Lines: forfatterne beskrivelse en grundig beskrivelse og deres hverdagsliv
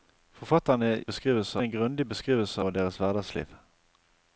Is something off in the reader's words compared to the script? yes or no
no